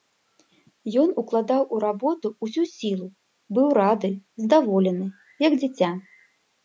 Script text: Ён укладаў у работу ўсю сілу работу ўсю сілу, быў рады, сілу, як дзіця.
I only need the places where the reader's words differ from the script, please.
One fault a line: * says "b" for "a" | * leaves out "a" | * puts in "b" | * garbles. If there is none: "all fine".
* leaves out "работу ўсю сілу"
* says "здаволены" for "сілу"